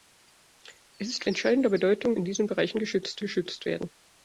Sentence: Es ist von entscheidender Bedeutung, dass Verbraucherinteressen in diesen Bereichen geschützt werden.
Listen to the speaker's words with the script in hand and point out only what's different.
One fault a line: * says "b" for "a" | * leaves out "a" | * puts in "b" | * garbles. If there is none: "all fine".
* leaves out "von"
* leaves out "dass Verbraucherinteressen"
* puts in "geschützt"